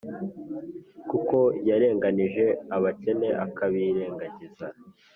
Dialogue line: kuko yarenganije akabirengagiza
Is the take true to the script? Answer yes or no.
no